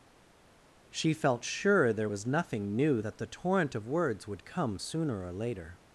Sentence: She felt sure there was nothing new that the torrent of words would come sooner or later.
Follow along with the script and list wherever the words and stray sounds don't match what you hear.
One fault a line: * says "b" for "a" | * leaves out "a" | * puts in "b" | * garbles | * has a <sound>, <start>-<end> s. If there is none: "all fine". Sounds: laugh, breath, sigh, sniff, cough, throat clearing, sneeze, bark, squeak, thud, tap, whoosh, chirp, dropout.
all fine